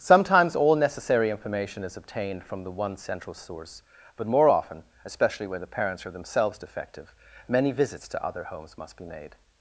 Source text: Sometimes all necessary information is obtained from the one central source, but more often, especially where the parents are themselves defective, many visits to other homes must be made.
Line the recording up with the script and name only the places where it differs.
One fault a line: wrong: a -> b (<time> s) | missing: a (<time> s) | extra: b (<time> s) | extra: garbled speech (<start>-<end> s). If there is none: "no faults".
wrong: where -> when (5.5 s)